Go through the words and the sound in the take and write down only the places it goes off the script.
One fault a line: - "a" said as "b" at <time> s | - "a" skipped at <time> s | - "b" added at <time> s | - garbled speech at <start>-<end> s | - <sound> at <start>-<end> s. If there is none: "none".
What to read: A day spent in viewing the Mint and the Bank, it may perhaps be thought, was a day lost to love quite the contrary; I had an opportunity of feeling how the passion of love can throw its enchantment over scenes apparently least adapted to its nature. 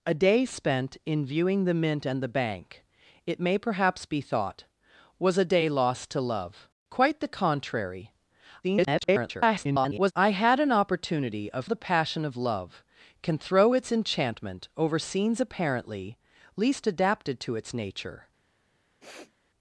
- garbled speech at 8.6-10.1 s
- "feeling how" skipped at 11.6 s
- sniff at 19.0-19.3 s